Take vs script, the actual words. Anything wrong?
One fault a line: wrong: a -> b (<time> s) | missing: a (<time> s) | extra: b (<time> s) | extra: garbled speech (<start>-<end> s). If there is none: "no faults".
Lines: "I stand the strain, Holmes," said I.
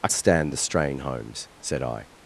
no faults